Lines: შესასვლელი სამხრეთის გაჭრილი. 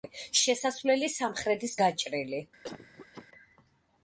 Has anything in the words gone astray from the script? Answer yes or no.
no